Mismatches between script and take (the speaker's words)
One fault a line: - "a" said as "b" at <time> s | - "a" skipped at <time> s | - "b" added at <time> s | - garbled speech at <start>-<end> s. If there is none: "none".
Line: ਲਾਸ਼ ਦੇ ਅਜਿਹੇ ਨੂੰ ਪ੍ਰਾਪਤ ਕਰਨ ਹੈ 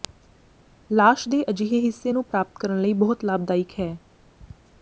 - "ਹਿੱਸੇ" added at 1.8 s
- "ਲਈ ਬਹੁਤ ਲਾਭਦਾਇਕ" added at 2.8 s